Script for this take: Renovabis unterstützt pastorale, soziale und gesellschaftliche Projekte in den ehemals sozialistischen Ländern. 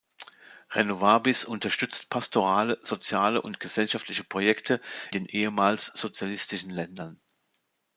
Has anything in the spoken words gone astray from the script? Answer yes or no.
yes